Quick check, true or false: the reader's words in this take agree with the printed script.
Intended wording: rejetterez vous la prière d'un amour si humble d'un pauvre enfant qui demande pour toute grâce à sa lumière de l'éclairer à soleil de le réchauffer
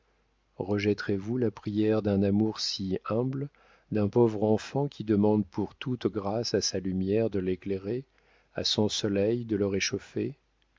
false